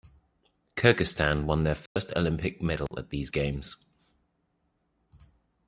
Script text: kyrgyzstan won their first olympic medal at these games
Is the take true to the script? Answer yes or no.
yes